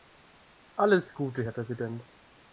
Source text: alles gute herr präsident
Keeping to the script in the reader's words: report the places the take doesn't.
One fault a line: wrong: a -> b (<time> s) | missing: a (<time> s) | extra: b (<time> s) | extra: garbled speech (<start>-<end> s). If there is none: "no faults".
no faults